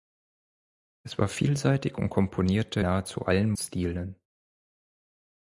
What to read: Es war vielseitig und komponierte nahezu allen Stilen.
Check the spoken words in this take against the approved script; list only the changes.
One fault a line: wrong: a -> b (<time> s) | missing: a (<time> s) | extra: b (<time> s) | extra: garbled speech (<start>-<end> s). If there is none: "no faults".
no faults